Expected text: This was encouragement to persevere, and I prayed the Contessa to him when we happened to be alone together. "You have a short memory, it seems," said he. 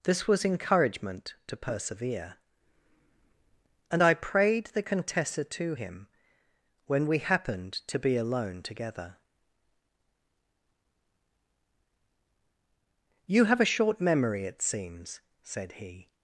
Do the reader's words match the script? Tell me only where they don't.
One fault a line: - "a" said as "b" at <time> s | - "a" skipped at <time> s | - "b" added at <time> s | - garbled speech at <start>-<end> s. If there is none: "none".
none